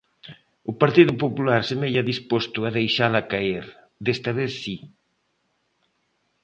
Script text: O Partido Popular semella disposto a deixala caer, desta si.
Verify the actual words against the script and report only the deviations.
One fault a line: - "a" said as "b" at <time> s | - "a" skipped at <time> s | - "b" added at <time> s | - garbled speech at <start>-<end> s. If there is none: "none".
- "vez" added at 4.4 s